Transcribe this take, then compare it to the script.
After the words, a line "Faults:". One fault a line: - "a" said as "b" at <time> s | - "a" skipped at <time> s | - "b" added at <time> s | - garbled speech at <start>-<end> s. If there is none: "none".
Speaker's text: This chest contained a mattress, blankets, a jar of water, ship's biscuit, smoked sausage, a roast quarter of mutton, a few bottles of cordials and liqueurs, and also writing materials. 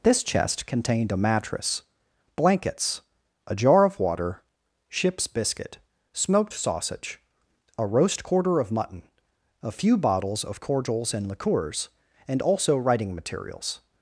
This chest contained a mattress, blankets, a jar of water, ship's biscuit, smoked sausage, a roast quarter of mutton, a few bottles of cordials and liqueurs, and also writing materials.
Faults:
none